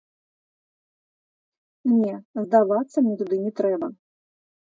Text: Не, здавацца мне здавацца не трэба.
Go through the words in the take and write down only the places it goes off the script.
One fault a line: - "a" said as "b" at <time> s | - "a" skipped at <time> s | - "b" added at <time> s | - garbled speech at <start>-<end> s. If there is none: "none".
- "здавацца" said as "туды" at 3.2 s